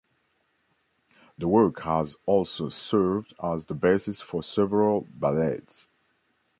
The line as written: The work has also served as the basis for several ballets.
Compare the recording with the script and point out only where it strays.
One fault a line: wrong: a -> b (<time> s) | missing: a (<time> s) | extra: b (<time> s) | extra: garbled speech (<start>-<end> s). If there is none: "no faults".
no faults